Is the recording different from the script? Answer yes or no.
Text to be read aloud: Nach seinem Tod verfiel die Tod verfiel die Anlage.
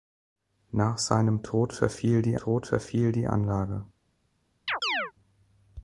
no